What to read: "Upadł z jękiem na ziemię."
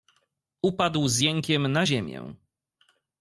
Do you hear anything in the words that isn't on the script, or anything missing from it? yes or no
no